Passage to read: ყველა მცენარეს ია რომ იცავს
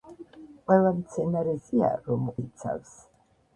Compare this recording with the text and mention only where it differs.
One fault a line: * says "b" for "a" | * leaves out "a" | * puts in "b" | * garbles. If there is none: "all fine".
all fine